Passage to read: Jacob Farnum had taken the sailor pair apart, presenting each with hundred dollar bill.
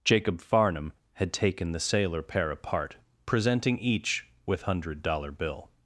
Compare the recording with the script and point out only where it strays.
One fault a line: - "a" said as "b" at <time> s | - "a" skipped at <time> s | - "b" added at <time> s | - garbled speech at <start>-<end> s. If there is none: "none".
none